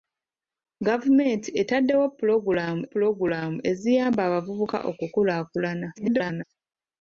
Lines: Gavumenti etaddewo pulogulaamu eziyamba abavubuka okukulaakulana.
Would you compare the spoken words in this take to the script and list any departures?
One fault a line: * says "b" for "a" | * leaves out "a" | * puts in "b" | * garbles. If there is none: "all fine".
* puts in "pulogulaamu"
* garbles